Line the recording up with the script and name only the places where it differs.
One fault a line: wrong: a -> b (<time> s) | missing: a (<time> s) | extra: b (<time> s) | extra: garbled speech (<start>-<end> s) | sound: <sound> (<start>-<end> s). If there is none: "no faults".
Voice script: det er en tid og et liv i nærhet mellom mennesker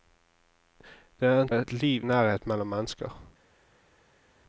missing: tid og (1.5 s)
missing: i (2.1 s)